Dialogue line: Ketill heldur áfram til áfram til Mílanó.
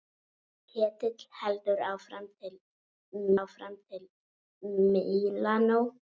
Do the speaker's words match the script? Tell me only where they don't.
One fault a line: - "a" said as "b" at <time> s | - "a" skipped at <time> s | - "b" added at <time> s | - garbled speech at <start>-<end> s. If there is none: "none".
none